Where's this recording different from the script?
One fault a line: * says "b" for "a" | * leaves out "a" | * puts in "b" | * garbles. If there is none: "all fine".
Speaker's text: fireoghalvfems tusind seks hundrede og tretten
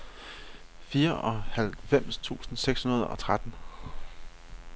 all fine